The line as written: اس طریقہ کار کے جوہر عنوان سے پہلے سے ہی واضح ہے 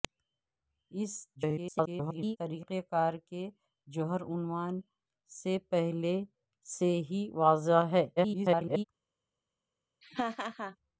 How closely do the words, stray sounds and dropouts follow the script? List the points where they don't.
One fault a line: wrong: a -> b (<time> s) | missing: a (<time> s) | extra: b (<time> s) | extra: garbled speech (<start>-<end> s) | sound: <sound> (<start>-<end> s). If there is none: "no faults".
extra: garbled speech (1.4-2.4 s)
extra: garbled speech (8.2-8.8 s)
sound: laugh (10.0-10.8 s)